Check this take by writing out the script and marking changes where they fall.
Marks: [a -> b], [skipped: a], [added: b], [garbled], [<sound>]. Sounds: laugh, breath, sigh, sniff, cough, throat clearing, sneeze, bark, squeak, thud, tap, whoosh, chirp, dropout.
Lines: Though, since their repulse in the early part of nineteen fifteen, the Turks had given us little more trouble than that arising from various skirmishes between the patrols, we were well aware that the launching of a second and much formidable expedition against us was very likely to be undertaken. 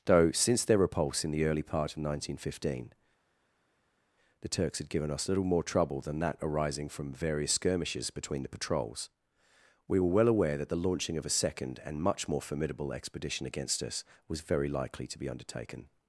Though, since their repulse in the early part of nineteen fifteen, the Turks had given us little more trouble than that arising from various skirmishes between the patrols, we were well aware that the launching of a second and much [added: more] formidable expedition against us was very likely to be undertaken.